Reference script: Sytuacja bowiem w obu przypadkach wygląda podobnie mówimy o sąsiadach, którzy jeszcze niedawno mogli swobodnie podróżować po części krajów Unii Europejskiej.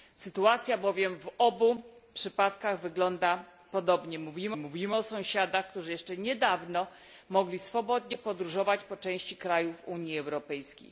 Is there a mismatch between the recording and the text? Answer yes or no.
yes